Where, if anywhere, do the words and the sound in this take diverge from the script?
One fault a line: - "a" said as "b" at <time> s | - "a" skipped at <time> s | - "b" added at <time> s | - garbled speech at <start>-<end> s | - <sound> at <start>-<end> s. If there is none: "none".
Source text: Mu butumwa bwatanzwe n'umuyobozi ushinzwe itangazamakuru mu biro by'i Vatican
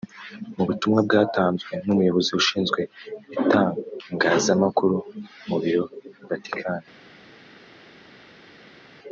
- "by'i" skipped at 5.8 s